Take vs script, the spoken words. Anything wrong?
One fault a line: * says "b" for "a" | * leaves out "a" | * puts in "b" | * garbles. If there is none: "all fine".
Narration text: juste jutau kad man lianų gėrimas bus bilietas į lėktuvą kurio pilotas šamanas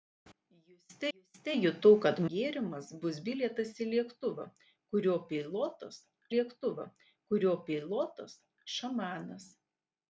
* puts in "juste"
* leaves out "man lianų"
* puts in "lėktuvą kurio pilotas"